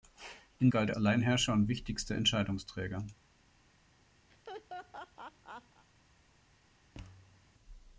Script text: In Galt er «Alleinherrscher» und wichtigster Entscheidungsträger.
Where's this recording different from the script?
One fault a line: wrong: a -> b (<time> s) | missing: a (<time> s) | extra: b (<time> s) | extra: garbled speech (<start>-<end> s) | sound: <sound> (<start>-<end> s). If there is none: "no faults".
sound: laugh (4.3-5.9 s)
sound: thud (6.9-7.5 s)